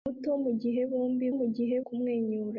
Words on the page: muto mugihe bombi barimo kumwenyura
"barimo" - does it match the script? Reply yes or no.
no